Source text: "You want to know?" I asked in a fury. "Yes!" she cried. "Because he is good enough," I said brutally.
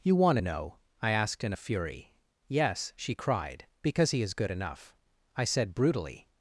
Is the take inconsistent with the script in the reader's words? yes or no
no